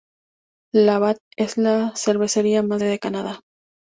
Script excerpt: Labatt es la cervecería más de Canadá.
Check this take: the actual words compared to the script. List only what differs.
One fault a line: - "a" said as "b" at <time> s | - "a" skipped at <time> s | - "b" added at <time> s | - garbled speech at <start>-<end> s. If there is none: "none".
none